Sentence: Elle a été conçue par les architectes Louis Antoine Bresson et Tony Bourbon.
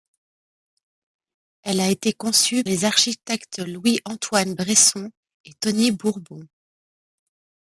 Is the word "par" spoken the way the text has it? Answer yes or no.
no